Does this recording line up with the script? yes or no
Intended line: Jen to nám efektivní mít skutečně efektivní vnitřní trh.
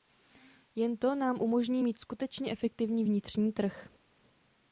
no